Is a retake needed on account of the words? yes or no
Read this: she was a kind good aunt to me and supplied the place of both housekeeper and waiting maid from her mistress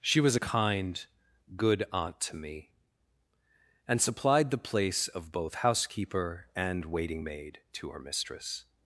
yes